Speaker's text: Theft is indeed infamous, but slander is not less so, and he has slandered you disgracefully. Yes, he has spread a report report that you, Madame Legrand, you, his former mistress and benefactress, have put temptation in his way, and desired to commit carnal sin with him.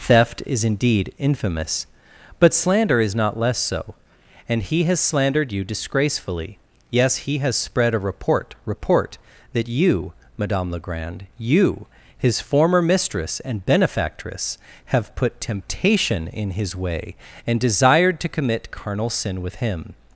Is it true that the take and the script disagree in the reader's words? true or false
false